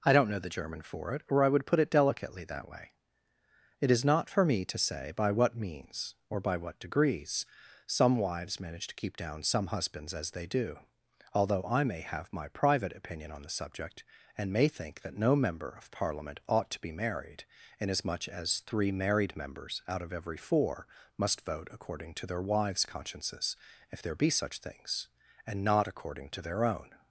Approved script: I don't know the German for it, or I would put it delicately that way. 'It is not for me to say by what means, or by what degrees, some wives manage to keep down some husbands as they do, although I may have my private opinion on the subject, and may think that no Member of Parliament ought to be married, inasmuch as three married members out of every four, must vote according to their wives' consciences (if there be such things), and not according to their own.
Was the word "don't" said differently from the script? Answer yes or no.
no